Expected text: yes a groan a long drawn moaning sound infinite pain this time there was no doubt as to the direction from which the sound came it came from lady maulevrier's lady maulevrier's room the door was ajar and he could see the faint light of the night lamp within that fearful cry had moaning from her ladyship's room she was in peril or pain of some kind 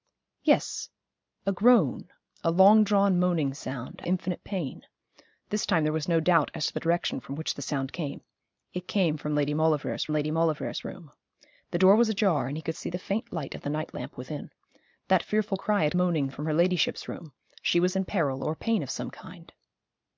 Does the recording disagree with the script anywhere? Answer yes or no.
no